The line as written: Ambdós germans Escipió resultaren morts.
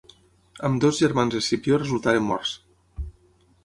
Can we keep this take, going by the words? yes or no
yes